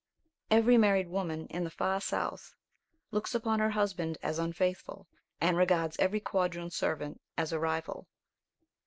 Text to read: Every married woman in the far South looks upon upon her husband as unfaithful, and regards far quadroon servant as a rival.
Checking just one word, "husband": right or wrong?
right